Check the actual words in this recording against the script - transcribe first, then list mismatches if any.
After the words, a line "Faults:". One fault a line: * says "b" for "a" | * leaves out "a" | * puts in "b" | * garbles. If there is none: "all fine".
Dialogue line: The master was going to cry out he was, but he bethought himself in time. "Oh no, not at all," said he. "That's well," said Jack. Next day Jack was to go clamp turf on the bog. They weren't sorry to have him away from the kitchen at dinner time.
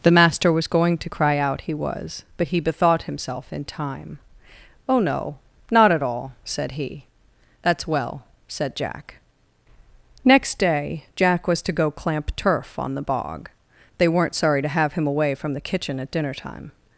The master was going to cry out he was, but he bethought himself in time. "Oh no, not at all," said he. "That's well," said Jack. Next day Jack was to go clamp turf on the bog. They weren't sorry to have him away from the kitchen at dinner time.
Faults:
all fine